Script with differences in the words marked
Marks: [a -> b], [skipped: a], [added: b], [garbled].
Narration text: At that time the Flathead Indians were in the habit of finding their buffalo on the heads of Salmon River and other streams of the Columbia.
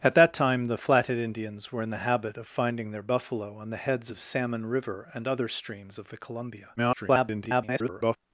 At that time the Flathead Indians were in the habit of finding their buffalo on the heads of Salmon River and other streams of the Columbia. [garbled]